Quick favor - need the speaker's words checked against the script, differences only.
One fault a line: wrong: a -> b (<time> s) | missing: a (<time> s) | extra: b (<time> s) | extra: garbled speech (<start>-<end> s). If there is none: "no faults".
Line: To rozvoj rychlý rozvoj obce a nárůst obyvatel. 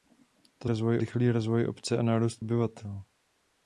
no faults